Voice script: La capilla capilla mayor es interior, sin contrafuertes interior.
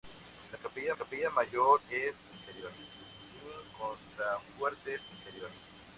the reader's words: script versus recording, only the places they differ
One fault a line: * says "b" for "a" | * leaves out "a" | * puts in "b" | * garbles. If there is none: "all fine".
all fine